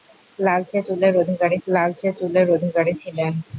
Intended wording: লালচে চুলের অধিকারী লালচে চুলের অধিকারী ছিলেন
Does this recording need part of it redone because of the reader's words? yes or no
no